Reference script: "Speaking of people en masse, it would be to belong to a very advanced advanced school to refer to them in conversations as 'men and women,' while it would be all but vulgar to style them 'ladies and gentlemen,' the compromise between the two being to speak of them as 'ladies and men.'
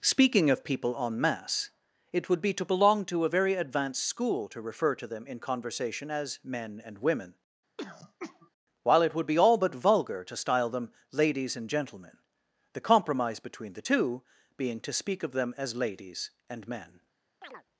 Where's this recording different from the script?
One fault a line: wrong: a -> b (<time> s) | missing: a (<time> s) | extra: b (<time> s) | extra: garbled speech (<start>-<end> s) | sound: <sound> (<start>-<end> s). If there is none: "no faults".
missing: advanced (4.0 s)
wrong: conversations -> conversation (5.4 s)
sound: throat clearing (7.8-8.5 s)
sound: chirp (17.4-17.6 s)